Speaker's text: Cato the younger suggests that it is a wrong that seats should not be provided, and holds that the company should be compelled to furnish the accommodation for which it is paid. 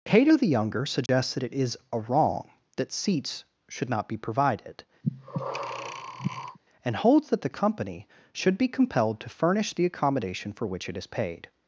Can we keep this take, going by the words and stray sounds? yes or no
no